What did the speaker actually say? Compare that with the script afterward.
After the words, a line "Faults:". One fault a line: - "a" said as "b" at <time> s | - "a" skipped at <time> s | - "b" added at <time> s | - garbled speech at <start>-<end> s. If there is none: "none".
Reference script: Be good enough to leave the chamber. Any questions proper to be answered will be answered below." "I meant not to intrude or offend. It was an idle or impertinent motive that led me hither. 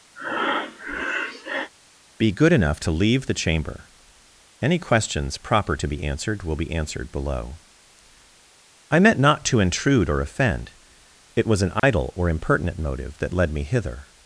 Be good enough to leave the chamber. Any questions proper to be answered will be answered below." "I meant not to intrude or offend. It was an idle or impertinent motive that led me hither.
Faults:
none